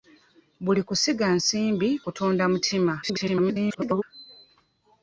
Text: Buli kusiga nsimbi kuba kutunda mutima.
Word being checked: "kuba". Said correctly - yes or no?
no